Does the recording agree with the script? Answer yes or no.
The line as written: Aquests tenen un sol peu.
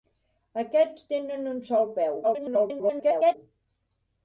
no